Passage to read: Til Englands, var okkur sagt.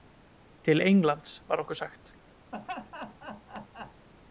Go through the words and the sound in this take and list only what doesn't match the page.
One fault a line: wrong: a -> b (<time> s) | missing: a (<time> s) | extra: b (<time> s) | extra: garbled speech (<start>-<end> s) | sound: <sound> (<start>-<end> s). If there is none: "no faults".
sound: laugh (2.5-4.1 s)